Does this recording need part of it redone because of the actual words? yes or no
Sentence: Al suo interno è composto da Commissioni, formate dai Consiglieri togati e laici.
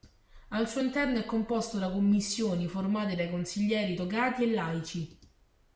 no